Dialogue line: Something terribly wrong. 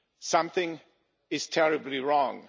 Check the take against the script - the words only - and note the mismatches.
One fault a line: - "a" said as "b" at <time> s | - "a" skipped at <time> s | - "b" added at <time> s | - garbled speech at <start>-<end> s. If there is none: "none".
- "is" added at 1.3 s